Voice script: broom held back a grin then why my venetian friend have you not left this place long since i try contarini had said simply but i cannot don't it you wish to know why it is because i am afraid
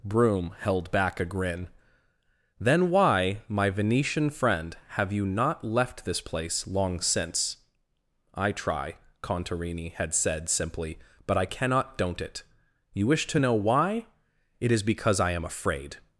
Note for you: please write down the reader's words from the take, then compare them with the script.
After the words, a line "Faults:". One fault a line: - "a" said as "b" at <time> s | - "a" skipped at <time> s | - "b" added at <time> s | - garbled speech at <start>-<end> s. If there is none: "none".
broom held back a grin then why my venetian friend have you not left this place long since i try contarini had said simply but i cannot don't it you wish to know why it is because i am afraid
Faults:
none